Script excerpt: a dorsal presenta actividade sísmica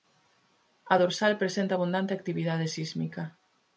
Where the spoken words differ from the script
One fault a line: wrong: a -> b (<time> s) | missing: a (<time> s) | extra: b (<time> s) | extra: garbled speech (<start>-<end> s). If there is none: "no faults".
extra: abundante (1.7 s)